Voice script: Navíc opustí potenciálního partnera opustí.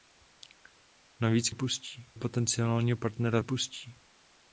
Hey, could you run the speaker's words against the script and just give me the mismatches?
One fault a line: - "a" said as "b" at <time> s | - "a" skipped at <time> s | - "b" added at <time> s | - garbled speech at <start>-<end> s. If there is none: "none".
none